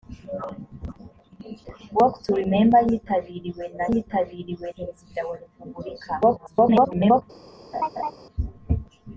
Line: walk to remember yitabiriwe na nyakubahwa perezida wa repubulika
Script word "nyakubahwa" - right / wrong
wrong